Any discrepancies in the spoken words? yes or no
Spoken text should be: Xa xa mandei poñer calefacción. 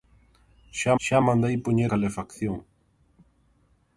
no